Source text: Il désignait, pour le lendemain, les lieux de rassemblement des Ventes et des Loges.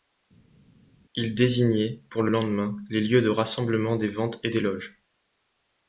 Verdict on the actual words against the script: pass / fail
pass